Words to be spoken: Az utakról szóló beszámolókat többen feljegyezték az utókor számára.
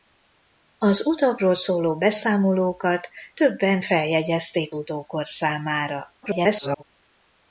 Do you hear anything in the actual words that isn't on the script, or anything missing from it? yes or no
yes